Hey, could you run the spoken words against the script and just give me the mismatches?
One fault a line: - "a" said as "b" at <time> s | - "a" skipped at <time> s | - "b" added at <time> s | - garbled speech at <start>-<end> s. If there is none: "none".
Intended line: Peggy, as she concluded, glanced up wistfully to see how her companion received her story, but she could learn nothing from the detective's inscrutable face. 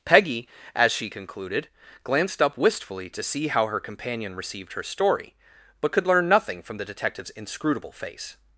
- "she" skipped at 5.9 s